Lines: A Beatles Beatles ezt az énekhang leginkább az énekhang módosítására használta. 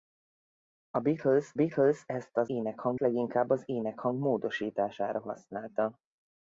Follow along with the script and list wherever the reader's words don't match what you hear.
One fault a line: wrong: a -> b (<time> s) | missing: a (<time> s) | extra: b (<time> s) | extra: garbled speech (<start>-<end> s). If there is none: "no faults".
no faults